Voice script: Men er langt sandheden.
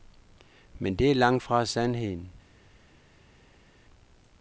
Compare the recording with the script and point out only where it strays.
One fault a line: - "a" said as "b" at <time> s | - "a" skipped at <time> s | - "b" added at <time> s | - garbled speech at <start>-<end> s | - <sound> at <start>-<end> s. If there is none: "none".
- "det" added at 0.9 s
- "fra" added at 1.4 s